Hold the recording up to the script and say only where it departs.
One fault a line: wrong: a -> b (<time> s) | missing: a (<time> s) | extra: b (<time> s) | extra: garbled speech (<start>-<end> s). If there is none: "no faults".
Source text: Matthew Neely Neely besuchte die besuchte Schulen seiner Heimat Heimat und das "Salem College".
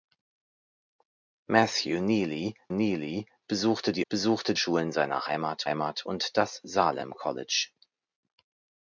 no faults